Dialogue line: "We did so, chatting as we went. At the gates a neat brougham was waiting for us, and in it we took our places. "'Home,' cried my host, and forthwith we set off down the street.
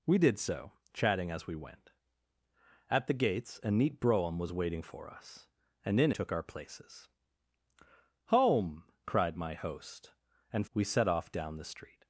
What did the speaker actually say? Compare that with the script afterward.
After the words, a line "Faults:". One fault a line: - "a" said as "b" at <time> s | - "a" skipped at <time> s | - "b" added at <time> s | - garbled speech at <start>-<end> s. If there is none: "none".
"We did so, chatting as we went. At the gates a neat brougham was waiting for us, and in took our places. "'Home,' cried my host, and we set off down the street.
Faults:
- "it we" skipped at 6.1 s
- "forthwith" skipped at 10.7 s